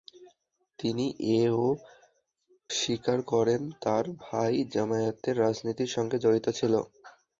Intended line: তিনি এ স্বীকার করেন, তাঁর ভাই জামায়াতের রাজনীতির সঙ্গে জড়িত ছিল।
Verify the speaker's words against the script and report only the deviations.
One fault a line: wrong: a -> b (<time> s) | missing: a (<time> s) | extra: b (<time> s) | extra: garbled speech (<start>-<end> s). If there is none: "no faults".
no faults